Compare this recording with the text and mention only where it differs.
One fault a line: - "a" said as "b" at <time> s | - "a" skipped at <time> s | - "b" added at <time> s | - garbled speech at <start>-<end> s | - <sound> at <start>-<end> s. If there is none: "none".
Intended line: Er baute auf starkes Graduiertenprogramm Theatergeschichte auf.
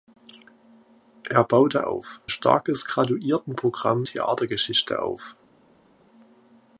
none